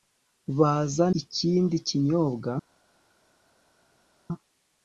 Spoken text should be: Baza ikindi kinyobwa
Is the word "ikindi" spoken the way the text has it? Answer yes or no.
yes